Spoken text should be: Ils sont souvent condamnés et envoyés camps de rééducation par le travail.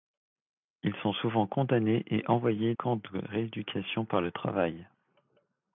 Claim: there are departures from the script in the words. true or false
false